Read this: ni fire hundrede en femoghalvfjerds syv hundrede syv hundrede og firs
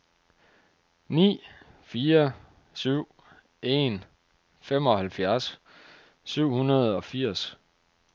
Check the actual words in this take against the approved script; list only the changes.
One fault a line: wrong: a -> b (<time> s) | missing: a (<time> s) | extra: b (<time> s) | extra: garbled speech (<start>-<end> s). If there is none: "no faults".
wrong: hundrede -> syv (2.7 s)
missing: syv hundrede (7.0 s)